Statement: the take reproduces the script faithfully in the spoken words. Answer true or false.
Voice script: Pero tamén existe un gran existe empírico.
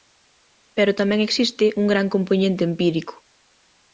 false